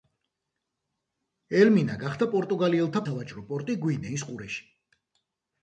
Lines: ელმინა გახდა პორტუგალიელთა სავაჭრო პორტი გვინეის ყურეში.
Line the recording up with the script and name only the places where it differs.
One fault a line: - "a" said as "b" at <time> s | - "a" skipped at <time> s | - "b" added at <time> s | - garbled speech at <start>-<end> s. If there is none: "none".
none